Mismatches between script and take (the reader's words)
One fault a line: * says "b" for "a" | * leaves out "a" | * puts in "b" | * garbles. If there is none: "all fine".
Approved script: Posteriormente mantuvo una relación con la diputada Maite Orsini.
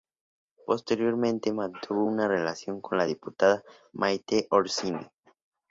all fine